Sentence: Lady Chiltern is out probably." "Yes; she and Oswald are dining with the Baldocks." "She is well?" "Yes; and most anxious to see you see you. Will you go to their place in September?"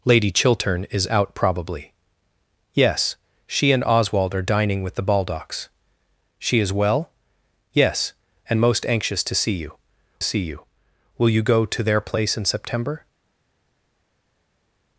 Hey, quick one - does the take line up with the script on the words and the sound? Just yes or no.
yes